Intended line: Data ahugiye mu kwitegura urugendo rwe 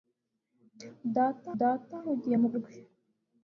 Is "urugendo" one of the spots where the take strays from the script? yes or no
yes